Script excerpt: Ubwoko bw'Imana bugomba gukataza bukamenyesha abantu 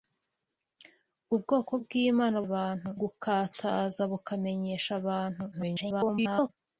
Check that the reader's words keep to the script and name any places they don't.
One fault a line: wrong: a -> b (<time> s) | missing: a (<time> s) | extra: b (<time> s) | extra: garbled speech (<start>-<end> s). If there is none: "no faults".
wrong: bugomba -> abantu (2.5 s)
extra: garbled speech (5.5-6.5 s)